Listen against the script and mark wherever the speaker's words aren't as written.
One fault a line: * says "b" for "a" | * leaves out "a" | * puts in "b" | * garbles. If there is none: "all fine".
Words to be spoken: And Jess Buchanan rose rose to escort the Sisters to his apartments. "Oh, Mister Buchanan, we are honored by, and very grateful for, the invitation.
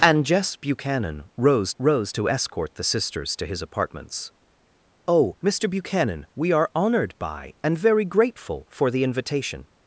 all fine